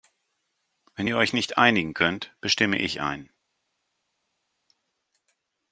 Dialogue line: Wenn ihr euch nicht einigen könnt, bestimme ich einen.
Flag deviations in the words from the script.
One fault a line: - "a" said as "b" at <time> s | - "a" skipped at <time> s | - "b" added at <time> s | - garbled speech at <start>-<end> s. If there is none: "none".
none